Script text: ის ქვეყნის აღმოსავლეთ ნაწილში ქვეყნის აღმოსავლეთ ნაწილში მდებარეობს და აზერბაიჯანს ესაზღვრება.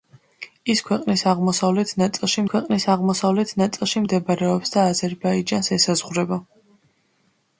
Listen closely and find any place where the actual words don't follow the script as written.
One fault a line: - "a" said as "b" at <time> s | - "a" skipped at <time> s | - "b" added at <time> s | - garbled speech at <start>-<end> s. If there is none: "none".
none